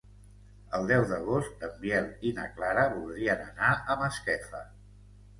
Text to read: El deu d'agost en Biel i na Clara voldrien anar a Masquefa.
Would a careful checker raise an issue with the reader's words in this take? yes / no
no